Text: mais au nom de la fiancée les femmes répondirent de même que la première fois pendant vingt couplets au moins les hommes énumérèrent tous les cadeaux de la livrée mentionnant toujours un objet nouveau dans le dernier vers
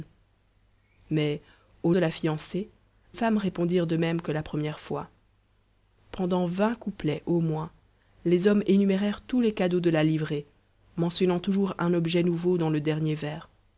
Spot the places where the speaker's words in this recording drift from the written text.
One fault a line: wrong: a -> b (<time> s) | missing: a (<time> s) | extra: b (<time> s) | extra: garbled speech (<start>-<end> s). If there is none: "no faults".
missing: nom (1.9 s)
missing: les (2.7 s)